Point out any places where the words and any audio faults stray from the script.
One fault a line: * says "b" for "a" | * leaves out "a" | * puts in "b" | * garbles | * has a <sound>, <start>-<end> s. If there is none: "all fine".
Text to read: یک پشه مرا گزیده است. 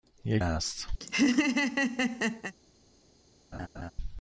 * leaves out "پشه مرا گزیده"
* has a laugh, 1.0-2.5 s
* has a laugh, 3.5-3.9 s